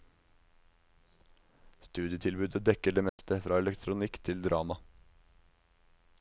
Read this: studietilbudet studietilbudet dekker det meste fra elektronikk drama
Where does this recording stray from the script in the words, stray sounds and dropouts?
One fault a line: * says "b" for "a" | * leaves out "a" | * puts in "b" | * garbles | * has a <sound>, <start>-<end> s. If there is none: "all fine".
* leaves out "studietilbudet"
* has a dropout, 3.1-3.2 s
* puts in "til"